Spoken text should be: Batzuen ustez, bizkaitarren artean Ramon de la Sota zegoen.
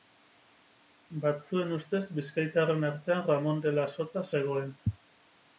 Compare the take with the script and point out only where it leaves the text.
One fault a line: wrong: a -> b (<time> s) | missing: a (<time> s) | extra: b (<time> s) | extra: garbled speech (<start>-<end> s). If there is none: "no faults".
no faults